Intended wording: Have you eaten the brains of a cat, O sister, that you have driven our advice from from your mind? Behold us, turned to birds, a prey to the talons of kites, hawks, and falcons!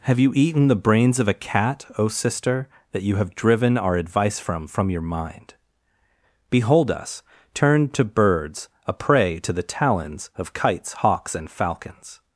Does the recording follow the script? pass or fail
pass